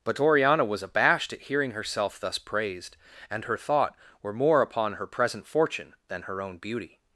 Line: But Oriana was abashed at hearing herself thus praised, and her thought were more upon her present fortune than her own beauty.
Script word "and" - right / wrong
right